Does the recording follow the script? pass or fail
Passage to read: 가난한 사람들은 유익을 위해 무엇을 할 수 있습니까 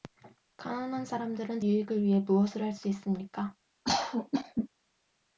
pass